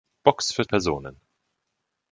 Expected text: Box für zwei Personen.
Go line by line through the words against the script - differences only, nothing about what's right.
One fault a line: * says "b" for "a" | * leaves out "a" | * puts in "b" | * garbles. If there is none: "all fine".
* leaves out "zwei"